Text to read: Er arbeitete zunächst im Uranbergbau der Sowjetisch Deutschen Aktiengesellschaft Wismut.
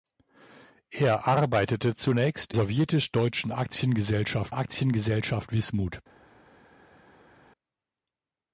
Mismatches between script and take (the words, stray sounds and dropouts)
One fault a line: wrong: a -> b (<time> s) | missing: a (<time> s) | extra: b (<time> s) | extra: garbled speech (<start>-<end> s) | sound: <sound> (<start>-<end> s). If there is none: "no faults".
missing: im Uranbergbau der (2.5 s)
extra: Aktiengesellschaft (4.5 s)